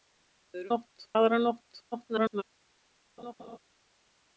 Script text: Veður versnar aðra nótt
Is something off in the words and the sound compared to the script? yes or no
yes